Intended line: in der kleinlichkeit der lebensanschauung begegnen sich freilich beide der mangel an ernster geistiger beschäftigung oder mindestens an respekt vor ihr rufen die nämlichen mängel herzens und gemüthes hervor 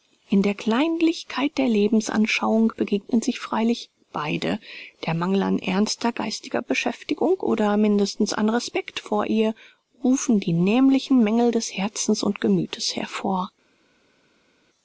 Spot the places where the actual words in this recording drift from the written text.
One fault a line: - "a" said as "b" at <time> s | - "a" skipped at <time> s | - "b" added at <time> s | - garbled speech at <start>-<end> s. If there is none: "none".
- "des" added at 11.5 s